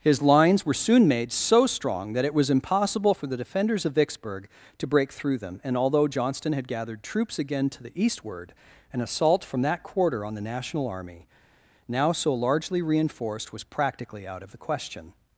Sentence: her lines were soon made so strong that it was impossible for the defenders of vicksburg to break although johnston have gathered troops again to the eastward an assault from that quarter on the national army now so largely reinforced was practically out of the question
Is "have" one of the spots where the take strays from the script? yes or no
yes